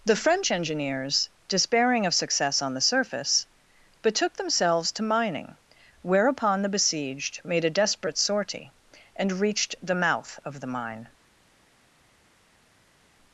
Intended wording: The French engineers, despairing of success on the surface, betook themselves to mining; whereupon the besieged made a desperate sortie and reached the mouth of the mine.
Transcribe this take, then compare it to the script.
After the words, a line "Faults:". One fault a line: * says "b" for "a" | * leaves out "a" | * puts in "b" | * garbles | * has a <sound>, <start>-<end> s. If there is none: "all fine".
The French engineers, despairing of success on the surface, betook themselves to mining; whereupon the besieged made a desperate sortie and reached the mouth of the mine.
Faults:
all fine